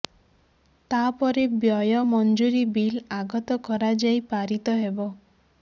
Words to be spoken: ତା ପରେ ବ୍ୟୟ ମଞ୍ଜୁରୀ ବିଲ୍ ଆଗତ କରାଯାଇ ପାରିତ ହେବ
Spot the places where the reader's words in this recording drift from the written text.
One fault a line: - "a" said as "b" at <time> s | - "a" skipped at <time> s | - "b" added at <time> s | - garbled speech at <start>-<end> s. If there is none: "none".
none